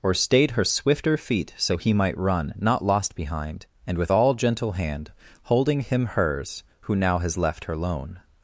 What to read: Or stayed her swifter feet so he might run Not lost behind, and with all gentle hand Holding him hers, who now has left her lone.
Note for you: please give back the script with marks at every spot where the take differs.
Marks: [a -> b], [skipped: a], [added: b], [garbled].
Or stayed her swifter feet so he might run Not lost behind, and with all gentle hand Holding him hers, who now has left her lone.